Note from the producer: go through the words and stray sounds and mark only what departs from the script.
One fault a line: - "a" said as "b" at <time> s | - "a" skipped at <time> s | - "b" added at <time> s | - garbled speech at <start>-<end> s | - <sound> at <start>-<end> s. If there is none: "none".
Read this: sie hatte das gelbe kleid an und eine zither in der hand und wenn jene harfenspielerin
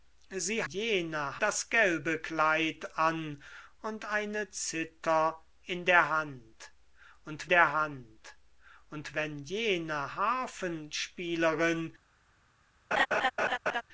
- "hatte" said as "jene" at 0.6 s
- "der hand und" added at 7.5 s
- laugh at 12.9-13.8 s